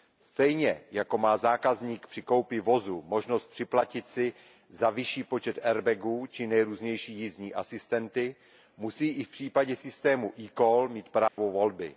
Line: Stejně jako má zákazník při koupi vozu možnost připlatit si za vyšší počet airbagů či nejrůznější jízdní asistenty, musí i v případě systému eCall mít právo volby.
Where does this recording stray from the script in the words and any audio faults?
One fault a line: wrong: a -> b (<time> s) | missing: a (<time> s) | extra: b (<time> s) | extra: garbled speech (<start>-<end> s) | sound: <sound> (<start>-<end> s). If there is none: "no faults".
sound: dropout (11.3-11.4 s)